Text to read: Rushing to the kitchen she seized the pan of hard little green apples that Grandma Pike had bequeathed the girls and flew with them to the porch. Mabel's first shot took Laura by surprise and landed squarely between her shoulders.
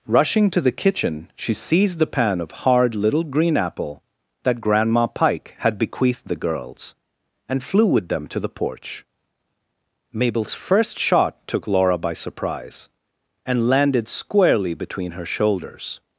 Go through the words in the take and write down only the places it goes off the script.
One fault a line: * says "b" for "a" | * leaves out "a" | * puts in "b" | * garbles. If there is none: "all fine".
* says "apple" for "apples"